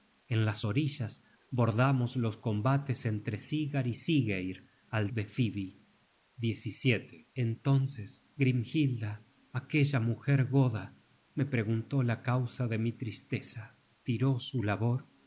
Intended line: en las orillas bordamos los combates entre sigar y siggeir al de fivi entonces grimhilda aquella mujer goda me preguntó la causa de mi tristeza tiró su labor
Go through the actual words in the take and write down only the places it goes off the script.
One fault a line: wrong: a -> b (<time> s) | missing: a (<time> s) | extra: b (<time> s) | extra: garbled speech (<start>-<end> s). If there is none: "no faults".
no faults